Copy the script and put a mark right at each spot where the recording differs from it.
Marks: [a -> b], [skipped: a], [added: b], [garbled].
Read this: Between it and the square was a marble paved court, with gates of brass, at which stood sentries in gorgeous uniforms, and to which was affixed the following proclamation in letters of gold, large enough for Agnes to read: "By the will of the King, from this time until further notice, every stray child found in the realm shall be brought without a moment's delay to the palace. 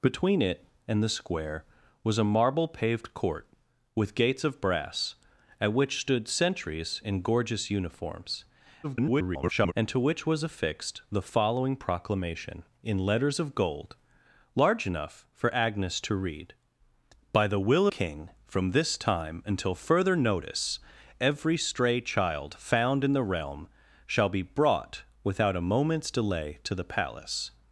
Between it and the square was a marble paved court, with gates of brass, at which stood sentries in gorgeous uniforms, [garbled] and to which was affixed the following proclamation in letters of gold, large enough for Agnes to read: "By the will [skipped: of the] King, from this time until further notice, every stray child found in the realm shall be brought without a moment's delay to the palace.